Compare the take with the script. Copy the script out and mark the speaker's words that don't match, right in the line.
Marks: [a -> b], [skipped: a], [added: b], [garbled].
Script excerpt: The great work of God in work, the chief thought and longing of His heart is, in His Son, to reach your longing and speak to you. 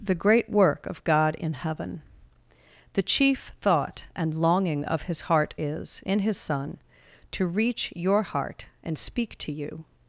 The great work of God in [work, -> heaven] the chief thought and longing of His heart is, in His Son, to reach your [longing -> heart] and speak to you.